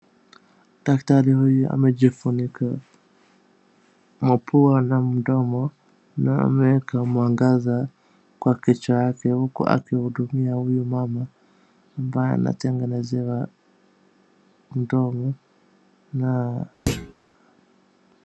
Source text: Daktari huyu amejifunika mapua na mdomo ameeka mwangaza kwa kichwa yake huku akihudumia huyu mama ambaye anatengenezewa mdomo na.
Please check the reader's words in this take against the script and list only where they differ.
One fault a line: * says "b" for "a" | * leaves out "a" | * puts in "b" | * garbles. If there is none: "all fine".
* puts in "na"